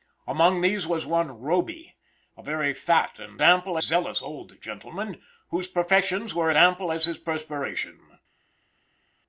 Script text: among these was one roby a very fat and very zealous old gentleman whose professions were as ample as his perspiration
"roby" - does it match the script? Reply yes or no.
yes